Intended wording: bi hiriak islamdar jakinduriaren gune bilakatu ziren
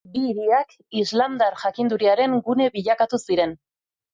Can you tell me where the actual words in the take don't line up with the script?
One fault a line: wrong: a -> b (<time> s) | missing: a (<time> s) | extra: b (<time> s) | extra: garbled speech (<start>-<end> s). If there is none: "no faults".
no faults